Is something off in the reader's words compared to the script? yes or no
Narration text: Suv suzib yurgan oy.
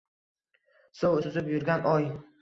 no